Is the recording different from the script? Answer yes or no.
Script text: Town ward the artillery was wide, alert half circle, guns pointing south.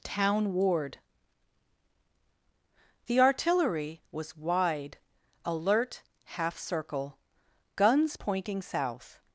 no